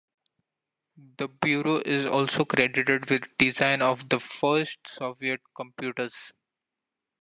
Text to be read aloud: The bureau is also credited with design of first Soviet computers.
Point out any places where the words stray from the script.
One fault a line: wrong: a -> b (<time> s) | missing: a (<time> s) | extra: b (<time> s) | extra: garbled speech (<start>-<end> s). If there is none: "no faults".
extra: the (4.1 s)